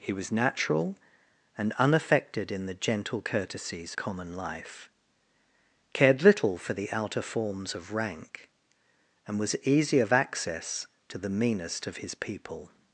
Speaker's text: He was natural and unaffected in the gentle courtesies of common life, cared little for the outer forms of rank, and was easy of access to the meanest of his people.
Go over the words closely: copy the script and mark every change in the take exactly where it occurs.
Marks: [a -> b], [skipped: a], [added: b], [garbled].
He was natural and unaffected in the gentle courtesies [skipped: of] common life, cared little for the outer forms of rank, and was easy of access to the meanest of his people.